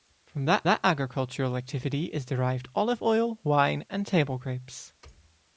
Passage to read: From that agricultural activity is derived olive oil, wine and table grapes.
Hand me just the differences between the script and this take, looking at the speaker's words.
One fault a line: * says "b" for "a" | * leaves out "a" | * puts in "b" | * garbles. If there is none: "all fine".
* puts in "that"